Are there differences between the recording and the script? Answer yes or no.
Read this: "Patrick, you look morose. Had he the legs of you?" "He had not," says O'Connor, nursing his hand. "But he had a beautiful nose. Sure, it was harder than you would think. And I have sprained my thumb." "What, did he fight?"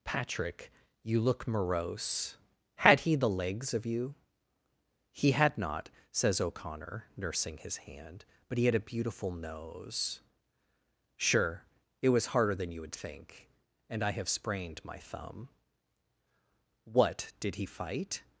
no